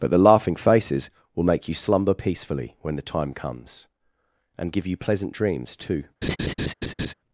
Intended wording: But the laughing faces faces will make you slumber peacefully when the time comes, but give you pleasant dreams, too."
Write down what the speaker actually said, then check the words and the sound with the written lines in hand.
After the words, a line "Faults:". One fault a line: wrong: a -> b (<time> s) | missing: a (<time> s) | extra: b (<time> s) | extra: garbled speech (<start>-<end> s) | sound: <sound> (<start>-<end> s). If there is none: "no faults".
But the laughing faces will make you slumber peacefully when the time comes, and give you pleasant dreams, too."
Faults:
missing: faces (1.1 s)
wrong: but -> and (4.6 s)
sound: laugh (6.2-7.1 s)